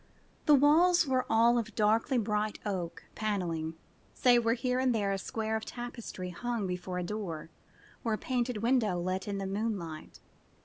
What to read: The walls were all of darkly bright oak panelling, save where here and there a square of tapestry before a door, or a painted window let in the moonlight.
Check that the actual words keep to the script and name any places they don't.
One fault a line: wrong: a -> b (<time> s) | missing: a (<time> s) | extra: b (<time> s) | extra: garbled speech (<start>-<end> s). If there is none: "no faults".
extra: hung (6.3 s)